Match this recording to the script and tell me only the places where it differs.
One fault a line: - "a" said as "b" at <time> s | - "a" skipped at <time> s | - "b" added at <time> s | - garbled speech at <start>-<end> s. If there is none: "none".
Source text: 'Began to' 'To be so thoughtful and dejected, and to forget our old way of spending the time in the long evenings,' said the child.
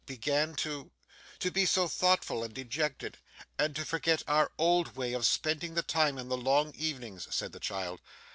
none